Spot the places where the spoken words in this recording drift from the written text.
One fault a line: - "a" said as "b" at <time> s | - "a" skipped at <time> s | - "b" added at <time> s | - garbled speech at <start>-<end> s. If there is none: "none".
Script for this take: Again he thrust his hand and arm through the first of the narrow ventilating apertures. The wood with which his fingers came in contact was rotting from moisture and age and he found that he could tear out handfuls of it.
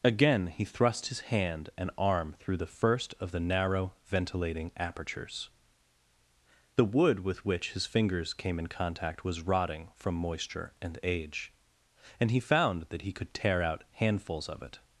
none